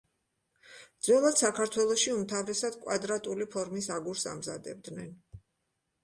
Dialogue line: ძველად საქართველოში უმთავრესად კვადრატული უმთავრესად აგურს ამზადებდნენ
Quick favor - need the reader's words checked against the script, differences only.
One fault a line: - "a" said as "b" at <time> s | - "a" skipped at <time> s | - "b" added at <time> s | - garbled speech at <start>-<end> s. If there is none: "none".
- "უმთავრესად" said as "ფორმის" at 3.6 s